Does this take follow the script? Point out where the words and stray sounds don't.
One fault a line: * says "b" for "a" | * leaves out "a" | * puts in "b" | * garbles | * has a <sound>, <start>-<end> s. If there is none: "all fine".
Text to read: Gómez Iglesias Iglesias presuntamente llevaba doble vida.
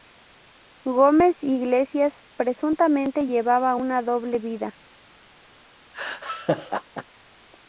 * leaves out "Iglesias"
* puts in "una"
* has a laugh, 5.9-7.0 s